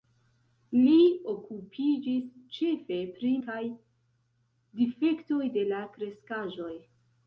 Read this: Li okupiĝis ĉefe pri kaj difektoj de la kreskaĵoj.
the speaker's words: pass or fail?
pass